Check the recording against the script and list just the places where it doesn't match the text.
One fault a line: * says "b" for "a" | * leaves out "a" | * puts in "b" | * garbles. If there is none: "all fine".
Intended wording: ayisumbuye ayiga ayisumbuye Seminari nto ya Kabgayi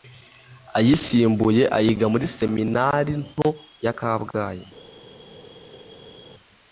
* says "muri" for "ayisumbuye"